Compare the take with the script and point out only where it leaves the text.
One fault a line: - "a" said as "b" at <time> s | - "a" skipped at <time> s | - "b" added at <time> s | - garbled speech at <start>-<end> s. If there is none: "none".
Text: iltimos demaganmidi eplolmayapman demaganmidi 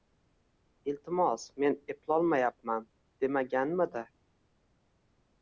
- "demaganmidi" said as "men" at 1.6 s